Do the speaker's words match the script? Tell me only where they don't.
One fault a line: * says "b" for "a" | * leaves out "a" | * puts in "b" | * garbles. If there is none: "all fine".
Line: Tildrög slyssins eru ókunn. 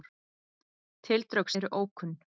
* leaves out "slyssins"